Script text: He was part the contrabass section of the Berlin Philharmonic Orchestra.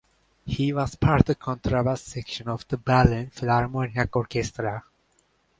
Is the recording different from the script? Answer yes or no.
no